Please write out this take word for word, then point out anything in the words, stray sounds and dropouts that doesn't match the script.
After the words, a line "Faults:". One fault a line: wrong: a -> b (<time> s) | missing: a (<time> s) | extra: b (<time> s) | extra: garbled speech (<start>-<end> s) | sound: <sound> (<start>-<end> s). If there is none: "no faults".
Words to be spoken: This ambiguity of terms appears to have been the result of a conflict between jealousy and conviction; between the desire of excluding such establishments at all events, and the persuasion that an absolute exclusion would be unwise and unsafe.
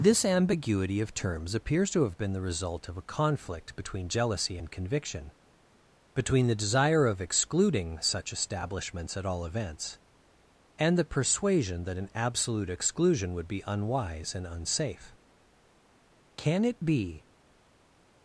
This ambiguity of terms appears to have been the result of a conflict between jealousy and conviction; between the desire of excluding such establishments at all events, and the persuasion that an absolute exclusion would be unwise and unsafe. Can it be
Faults:
extra: Can it be (16.4 s)